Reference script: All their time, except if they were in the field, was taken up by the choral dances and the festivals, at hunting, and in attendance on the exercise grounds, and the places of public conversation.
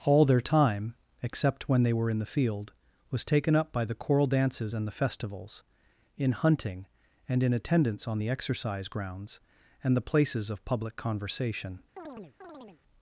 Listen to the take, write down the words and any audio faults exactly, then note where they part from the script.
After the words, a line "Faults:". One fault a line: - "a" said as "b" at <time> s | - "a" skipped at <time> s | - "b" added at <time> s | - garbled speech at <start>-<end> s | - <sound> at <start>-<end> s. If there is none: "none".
All their time, except when they were in the field, was taken up by the choral dances and the festivals, in hunting, and in attendance on the exercise grounds, and the places of public conversation.
Faults:
- "if" said as "when" at 1.7 s
- "at" said as "in" at 6.2 s
- chirp at 12.0-12.8 s